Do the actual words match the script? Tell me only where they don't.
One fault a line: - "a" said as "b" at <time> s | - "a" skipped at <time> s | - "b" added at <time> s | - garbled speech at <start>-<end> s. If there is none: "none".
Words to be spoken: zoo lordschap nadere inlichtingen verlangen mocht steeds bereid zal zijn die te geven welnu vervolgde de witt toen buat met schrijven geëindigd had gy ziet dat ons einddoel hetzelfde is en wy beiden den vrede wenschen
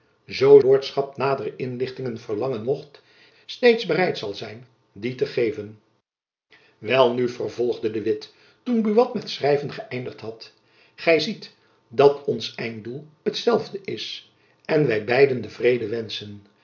none